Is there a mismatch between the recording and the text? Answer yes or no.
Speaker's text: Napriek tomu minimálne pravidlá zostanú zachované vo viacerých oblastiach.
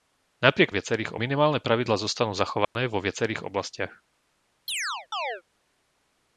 yes